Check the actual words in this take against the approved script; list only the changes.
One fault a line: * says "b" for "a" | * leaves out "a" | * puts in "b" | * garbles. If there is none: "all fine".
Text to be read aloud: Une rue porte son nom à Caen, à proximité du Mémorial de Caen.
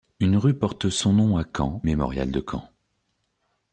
* leaves out "à proximité du"